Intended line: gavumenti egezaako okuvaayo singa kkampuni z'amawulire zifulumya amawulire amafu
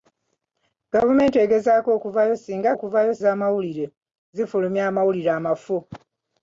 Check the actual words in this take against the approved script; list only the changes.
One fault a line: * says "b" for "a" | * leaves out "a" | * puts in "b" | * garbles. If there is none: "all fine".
* says "okuvaayo" for "kkampuni"